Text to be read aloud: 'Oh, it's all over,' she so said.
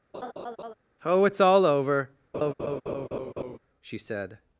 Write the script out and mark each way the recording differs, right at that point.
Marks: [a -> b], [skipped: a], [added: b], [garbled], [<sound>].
[laugh] 'Oh, it's all over,' [laugh] she [skipped: so] said.